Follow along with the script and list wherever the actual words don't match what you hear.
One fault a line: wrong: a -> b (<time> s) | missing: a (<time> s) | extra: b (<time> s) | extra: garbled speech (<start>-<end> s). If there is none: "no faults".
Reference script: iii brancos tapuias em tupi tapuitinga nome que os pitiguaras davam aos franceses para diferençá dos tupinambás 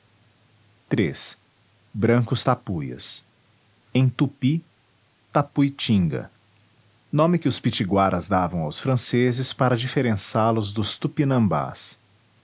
extra: los (10.5 s)